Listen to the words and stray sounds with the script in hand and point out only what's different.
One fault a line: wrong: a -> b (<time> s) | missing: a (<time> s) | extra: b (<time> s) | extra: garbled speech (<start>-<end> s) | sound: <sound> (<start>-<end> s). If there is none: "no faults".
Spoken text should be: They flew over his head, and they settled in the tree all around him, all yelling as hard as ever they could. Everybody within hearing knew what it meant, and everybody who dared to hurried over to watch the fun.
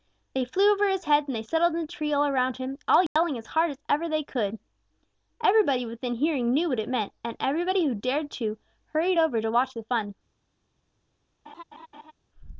sound: dropout (3.1-3.2 s)
sound: laugh (11.5-12.1 s)